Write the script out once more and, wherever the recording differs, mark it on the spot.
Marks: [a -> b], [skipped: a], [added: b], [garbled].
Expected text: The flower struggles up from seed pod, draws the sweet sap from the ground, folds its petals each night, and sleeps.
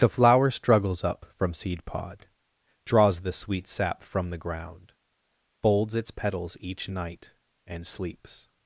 The flower struggles up from seed pod, draws the sweet sap from the ground, folds its petals each night, and sleeps.